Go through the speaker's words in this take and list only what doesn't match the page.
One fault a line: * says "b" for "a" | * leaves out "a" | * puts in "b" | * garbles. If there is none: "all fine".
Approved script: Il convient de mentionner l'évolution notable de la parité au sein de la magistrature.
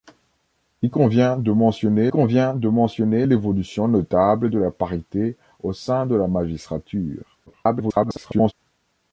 * puts in "convient de mentionner"
* garbles